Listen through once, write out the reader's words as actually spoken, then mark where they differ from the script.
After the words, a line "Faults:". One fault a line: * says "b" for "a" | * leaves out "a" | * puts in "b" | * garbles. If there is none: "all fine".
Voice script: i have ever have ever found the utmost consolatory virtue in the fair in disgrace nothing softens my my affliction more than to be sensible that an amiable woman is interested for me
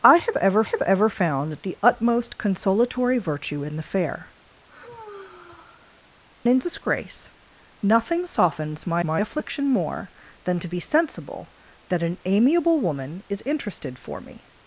i have ever have ever found the utmost consolatory virtue in the fair in disgrace nothing softens my my affliction more than to be sensible that an amiable woman is interested for me
Faults:
all fine